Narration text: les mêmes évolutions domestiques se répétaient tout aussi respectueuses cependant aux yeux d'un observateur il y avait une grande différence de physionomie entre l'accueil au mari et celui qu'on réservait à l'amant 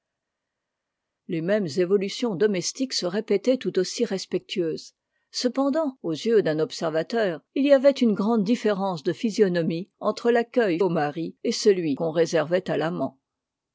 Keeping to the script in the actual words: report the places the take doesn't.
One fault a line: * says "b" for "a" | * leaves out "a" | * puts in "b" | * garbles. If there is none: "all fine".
all fine